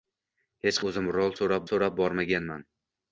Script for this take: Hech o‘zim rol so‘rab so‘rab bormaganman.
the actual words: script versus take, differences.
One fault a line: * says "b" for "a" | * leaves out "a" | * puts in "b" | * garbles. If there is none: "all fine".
all fine